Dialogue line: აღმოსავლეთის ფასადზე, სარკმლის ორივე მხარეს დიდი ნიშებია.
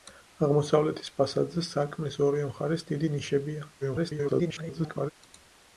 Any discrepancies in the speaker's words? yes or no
yes